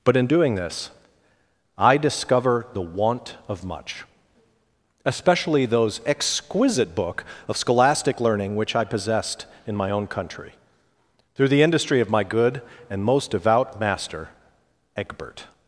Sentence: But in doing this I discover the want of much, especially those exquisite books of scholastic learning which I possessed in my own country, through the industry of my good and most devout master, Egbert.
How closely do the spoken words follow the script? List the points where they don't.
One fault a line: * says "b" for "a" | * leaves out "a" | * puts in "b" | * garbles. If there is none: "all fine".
* says "book" for "books"